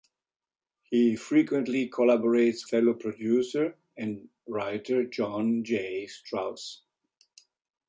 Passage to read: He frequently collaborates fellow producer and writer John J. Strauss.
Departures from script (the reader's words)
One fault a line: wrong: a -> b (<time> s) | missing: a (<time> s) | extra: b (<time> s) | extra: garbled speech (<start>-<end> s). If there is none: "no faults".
no faults